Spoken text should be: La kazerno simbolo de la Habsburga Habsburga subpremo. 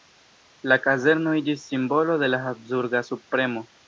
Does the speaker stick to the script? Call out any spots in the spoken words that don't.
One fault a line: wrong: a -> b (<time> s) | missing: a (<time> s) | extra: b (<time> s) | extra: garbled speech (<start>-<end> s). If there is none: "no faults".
extra: iĝis (1.4 s)
missing: Habsburga (3.0 s)